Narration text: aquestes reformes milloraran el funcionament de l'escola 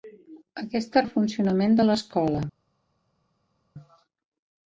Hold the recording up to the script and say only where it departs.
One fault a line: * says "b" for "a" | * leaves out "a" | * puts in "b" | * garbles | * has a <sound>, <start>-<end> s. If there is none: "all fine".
* leaves out "reformes milloraran"